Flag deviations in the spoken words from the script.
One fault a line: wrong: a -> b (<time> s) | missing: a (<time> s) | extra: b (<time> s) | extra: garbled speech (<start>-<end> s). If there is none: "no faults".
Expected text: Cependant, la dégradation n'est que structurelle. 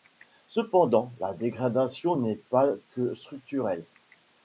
extra: pas (2.4 s)